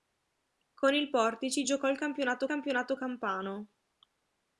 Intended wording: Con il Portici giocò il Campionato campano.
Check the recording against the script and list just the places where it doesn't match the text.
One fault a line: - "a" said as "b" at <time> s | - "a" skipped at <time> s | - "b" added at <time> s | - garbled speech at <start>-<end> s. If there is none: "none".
- "Campionato" added at 2.4 s